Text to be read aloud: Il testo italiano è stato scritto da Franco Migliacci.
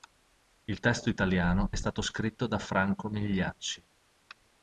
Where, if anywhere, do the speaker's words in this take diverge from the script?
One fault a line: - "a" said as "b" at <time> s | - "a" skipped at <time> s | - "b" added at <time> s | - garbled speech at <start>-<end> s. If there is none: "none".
none